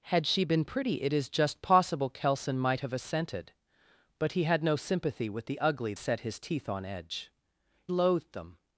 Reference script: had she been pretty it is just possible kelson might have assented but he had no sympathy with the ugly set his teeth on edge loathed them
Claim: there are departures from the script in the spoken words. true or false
false